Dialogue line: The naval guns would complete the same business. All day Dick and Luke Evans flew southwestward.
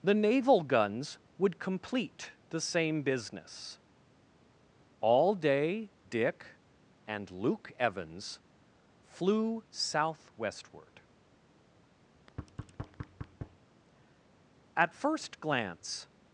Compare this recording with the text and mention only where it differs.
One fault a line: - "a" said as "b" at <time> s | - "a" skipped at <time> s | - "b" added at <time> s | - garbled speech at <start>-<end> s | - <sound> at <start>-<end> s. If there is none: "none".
- thud at 12.1-13.6 s
- "At first glance" added at 14.8 s